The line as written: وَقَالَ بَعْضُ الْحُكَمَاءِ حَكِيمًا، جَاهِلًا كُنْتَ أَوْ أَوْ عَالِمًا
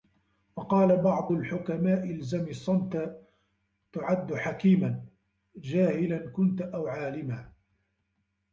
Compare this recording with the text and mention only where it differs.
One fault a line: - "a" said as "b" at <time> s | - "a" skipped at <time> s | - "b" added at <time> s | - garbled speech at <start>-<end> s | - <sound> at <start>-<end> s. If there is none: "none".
- "الْزَمْ الصَّمْتَ تُعَدُّ" added at 2.1 s
- "أَوْ" skipped at 6.9 s